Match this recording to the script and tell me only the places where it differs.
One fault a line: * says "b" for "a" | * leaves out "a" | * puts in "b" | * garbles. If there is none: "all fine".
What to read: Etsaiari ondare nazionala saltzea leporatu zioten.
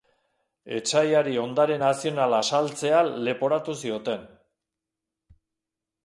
all fine